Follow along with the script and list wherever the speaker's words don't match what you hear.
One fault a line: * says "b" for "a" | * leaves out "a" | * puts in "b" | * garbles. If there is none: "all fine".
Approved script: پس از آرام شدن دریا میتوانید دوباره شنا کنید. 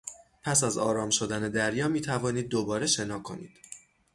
all fine